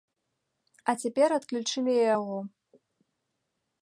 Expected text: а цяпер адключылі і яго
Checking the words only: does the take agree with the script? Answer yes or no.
yes